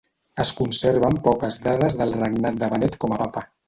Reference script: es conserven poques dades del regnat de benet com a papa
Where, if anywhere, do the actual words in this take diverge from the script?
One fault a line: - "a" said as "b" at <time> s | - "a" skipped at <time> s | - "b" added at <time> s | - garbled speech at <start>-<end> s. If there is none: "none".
none